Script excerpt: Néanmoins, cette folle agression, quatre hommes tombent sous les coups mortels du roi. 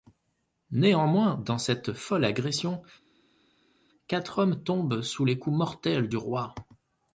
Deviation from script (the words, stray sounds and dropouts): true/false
true